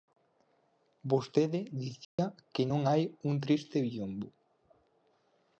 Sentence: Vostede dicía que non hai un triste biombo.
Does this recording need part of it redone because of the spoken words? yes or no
no